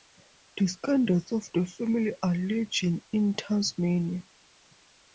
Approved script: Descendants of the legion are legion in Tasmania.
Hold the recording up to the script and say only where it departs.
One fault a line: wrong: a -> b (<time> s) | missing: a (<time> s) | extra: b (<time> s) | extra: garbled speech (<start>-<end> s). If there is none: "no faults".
wrong: legion -> family (1.7 s)